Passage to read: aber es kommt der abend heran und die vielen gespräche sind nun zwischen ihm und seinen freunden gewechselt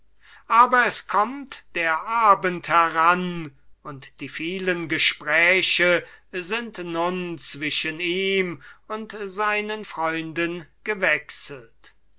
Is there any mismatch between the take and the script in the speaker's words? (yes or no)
no